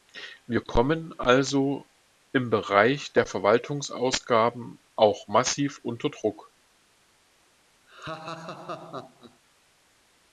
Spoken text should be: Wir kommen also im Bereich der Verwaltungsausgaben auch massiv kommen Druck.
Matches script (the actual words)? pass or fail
fail